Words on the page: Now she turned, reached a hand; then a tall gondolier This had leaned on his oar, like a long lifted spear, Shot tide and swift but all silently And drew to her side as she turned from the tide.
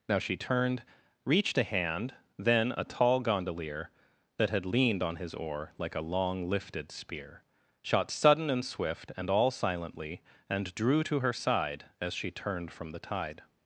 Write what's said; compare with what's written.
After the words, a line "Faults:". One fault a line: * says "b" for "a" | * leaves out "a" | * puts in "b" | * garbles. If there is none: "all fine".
Now she turned, reached a hand; then a tall gondolier That had leaned on his oar, like a long lifted spear, Shot sudden and swift and all silently And drew to her side as she turned from the tide.
Faults:
* says "That" for "This"
* says "sudden" for "tide"
* says "and" for "but"